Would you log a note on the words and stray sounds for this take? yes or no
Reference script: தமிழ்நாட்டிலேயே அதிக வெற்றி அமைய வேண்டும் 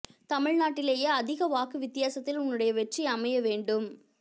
yes